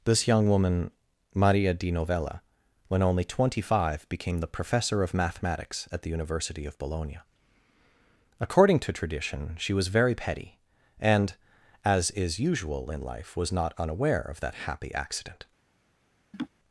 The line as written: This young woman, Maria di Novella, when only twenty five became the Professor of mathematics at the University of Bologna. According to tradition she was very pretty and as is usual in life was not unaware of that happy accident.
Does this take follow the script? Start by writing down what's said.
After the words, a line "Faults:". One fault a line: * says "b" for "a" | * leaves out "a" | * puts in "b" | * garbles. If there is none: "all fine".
This young woman, Maria di Novella, when only twenty five became the Professor of mathematics at the University of Bologna. According to tradition she was very petty and as is usual in life was not unaware of that happy accident.
Faults:
* says "petty" for "pretty"